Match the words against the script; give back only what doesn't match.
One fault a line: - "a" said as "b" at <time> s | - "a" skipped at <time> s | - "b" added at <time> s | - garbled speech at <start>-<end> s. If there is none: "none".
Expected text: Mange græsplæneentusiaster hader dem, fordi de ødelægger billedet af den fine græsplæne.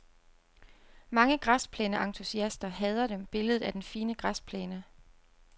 - "fordi de ødelægger" skipped at 3.2 s